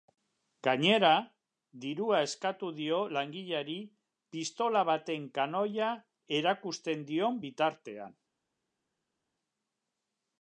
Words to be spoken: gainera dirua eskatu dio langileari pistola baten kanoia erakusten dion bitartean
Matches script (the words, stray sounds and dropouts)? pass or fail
pass